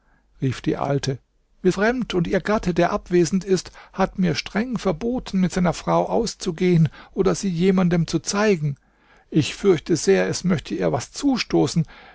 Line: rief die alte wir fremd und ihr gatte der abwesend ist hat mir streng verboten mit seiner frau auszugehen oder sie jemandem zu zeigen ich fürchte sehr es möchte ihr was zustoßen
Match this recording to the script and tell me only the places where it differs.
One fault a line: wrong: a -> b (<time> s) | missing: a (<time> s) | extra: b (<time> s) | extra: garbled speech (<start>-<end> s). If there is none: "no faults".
no faults